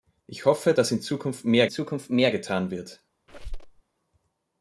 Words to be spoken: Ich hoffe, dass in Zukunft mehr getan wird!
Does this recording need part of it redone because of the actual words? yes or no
yes